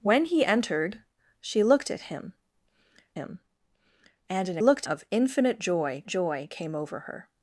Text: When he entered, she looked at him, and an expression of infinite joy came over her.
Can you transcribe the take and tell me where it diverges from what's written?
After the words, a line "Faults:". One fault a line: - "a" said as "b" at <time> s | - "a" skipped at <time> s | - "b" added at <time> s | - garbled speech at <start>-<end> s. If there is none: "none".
When he entered, she looked at him him, and an looked of infinite joy joy came over her.
Faults:
- "him" added at 3.1 s
- "expression" said as "looked" at 4.6 s
- "joy" added at 6.1 s